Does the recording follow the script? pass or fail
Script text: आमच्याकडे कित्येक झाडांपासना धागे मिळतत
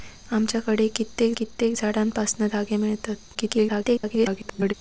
fail